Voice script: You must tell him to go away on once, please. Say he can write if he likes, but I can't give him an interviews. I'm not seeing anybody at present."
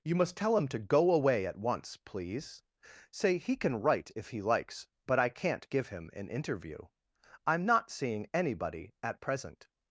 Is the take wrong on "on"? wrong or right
wrong